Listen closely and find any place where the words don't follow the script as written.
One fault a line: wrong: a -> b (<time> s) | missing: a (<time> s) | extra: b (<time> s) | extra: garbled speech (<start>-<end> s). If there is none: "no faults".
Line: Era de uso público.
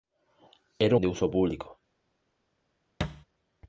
no faults